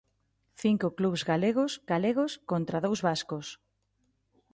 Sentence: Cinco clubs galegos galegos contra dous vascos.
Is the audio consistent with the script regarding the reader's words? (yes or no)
yes